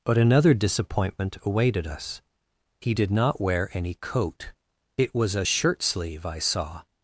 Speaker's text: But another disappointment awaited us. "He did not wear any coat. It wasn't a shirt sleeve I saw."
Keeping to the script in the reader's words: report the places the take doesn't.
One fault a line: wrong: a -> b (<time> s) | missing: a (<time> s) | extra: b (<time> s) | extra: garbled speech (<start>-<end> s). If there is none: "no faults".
wrong: wasn't -> was (5.1 s)